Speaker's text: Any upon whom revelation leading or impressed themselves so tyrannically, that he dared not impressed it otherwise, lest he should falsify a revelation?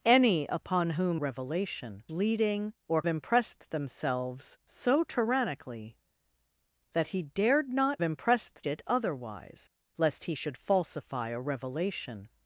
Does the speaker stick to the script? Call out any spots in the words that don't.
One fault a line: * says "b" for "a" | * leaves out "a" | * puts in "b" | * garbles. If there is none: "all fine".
all fine